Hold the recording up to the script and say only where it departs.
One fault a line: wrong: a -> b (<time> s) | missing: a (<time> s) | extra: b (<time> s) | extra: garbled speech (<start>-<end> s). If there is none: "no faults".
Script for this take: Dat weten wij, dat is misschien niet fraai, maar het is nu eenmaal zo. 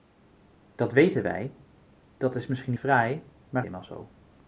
missing: niet (2.7 s)
missing: het is nu (3.6 s)